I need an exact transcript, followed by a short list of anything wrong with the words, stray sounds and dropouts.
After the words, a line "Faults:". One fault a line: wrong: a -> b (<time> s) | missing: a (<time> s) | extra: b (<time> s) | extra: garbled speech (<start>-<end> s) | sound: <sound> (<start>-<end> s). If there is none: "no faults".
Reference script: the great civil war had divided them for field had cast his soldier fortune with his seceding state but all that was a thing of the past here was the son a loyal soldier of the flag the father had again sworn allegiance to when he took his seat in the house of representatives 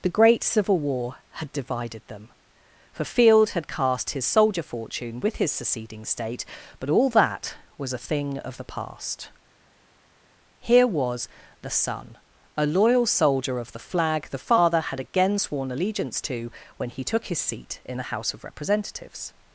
the great civil war had divided them for field had cast his soldier fortune with his seceding state but all that was a thing of the past here was the son a loyal soldier of the flag the father had again sworn allegiance to when he took his seat in the house of representatives
Faults:
no faults